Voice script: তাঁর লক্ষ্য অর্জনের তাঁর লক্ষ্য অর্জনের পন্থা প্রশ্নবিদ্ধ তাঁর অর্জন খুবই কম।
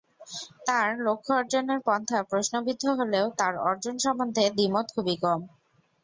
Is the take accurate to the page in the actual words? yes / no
no